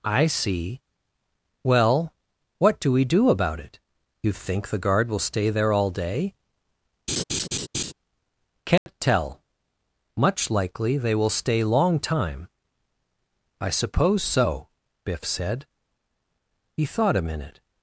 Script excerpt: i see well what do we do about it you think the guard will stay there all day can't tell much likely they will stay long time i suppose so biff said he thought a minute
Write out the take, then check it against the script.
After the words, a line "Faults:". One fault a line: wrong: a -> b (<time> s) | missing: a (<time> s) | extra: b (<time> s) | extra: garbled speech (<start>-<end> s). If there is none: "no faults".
i see well what do we do about it you think the guard will stay there all day can't tell much likely they will stay long time i suppose so biff said he thought a minute
Faults:
no faults